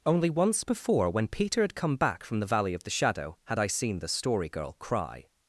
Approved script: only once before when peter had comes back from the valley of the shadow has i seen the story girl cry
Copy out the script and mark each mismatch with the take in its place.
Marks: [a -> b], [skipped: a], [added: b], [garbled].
only once before when peter had [comes -> come] back from the valley of the shadow [has -> had] i seen the story girl cry